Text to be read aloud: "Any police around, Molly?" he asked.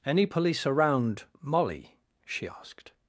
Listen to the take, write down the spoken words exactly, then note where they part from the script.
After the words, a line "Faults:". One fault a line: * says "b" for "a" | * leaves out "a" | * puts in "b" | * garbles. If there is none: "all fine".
"Any police around, Molly?" she asked.
Faults:
* says "she" for "he"